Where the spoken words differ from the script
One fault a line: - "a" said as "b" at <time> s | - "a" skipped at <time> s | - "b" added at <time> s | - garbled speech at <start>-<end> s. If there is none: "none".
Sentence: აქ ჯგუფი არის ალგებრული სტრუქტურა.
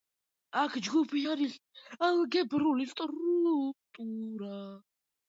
none